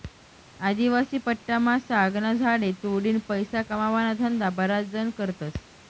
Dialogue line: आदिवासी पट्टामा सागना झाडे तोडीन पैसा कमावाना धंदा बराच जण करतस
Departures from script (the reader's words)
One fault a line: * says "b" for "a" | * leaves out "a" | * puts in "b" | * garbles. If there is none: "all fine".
all fine